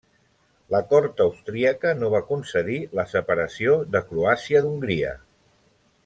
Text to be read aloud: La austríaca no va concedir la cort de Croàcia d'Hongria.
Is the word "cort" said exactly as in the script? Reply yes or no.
no